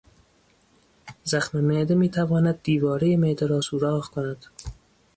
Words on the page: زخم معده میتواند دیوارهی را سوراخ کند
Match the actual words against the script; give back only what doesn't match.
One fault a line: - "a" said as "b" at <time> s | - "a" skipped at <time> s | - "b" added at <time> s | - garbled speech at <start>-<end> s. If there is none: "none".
- "معده" added at 3.2 s